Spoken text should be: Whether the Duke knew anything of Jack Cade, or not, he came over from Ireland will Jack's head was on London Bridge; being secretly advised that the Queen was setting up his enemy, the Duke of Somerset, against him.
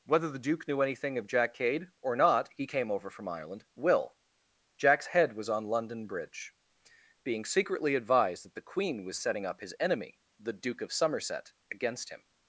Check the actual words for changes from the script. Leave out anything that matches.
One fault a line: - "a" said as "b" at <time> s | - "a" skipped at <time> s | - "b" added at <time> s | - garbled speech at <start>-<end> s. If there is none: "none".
none